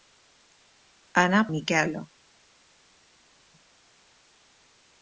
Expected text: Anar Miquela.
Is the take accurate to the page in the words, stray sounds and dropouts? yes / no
yes